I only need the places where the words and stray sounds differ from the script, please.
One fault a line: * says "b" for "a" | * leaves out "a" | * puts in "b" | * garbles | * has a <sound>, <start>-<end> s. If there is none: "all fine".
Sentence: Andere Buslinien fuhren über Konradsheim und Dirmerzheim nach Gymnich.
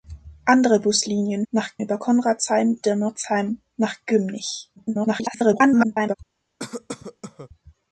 * says "nach" for "fuhren"
* leaves out "und"
* garbles
* has a cough, 6.6-7.5 s